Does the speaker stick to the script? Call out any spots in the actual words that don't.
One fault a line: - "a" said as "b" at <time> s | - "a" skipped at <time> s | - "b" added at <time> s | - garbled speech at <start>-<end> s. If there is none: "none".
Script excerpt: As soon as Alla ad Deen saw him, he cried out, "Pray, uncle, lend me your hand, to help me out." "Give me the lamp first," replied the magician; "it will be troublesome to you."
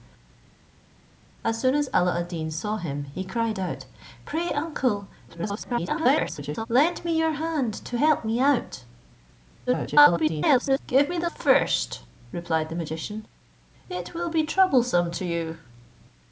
- garbled speech at 5.3-6.7 s
- garbled speech at 9.7-10.8 s
- "lamp" skipped at 11.3 s